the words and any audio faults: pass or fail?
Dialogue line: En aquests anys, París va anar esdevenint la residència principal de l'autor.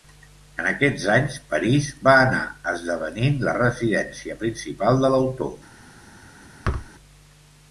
fail